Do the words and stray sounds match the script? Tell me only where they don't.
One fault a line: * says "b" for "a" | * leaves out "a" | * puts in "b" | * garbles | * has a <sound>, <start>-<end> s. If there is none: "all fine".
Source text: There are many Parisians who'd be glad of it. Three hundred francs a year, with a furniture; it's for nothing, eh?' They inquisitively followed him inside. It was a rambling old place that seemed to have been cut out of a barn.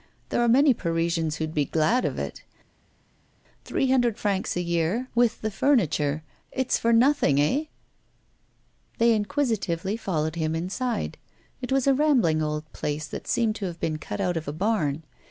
* says "the" for "a"